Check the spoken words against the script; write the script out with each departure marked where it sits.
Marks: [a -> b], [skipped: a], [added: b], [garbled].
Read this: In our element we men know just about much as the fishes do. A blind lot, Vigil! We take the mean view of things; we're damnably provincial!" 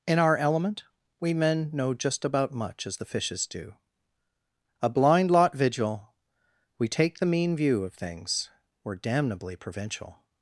In our element we men know just about much as the fishes do. A blind lot, Vigil! We take the mean view of things; we're damnably provincial!"